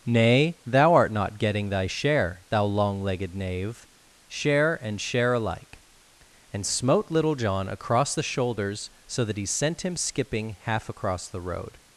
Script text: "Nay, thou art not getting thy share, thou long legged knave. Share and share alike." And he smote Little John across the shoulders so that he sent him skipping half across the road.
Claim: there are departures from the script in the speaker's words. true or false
true